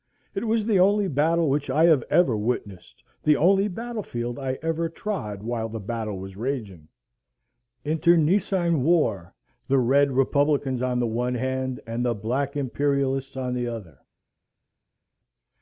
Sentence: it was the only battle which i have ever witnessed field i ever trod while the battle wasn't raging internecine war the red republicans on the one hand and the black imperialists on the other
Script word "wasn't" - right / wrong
wrong